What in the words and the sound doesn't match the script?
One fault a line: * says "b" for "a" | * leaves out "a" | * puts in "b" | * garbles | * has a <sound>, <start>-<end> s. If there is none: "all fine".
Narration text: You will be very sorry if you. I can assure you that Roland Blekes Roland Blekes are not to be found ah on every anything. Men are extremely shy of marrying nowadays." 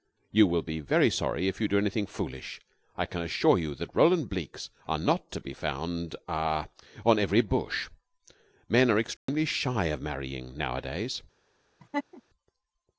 * puts in "do anything foolish"
* leaves out "Roland Blekes"
* says "bush" for "anything"
* has a dropout, 9.2-9.3 s
* has a laugh, 11.8-12.2 s